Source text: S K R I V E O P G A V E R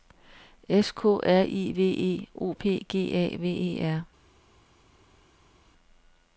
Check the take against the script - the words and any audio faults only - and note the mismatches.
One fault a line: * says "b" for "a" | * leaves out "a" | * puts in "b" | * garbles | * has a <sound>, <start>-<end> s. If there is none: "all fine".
all fine